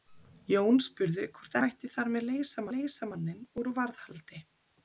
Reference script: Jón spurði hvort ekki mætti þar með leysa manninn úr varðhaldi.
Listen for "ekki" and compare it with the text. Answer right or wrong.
wrong